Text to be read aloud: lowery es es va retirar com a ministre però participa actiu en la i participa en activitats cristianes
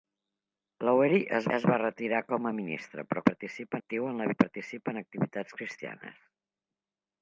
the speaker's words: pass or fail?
pass